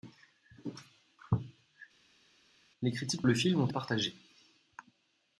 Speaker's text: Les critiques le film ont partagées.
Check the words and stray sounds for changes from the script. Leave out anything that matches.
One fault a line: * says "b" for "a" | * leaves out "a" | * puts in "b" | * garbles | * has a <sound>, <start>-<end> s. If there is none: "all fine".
all fine